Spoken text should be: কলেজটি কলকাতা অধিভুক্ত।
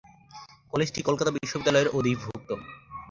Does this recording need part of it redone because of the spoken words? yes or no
yes